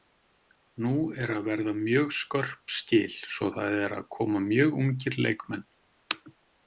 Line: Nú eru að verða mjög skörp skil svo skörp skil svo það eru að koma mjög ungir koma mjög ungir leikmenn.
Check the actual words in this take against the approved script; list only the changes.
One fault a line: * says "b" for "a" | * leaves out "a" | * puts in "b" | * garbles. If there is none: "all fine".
* leaves out "skörp skil svo"
* leaves out "koma mjög ungir"